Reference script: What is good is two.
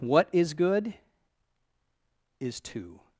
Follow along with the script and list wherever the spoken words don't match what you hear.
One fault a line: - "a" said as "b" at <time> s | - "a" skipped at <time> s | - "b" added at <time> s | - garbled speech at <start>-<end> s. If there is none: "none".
none